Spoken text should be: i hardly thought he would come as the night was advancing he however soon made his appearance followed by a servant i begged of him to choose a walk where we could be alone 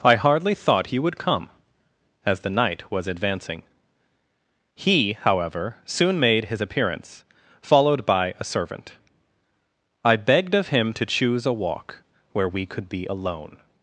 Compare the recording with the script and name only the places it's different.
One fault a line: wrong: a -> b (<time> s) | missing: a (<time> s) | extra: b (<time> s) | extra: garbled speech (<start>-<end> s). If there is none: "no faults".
no faults